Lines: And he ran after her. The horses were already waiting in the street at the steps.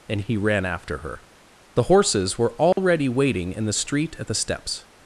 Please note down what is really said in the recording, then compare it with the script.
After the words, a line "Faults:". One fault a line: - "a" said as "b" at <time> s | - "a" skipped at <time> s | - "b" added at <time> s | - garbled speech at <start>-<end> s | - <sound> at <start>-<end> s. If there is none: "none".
And he ran after her. The horses were already waiting in the street at the steps.
Faults:
- dropout at 2.7-2.8 s